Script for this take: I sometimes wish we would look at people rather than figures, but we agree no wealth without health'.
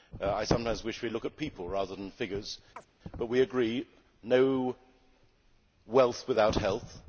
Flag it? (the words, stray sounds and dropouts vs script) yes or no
yes